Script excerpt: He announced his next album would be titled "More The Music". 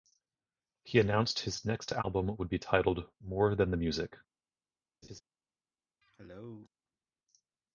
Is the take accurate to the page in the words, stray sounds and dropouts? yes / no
no